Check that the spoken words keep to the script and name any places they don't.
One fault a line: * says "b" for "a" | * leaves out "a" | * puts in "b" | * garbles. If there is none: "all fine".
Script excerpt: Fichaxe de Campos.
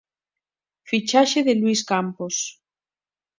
* puts in "Luís"